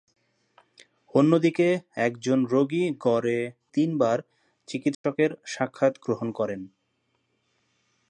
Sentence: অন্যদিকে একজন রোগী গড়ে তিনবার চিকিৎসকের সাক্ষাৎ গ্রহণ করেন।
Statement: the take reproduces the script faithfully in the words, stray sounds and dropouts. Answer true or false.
false